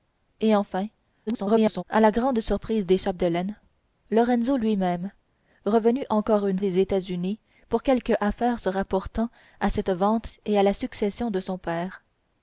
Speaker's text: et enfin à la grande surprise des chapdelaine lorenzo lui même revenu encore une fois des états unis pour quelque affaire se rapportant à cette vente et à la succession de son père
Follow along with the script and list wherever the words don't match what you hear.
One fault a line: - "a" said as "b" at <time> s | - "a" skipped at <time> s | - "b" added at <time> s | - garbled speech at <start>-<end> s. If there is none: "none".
- garbled speech at 1.3-1.8 s
- "fois" skipped at 6.6 s